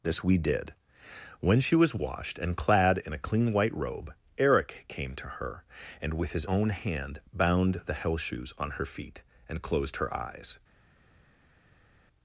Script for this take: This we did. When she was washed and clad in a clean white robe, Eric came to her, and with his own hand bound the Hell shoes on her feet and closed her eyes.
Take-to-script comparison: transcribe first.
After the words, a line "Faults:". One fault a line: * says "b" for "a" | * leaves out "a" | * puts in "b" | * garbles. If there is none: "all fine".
This we did. When she was washed and clad in a clean white robe, Eric came to her, and with his own hand bound the Hell shoes on her feet and closed her eyes.
Faults:
all fine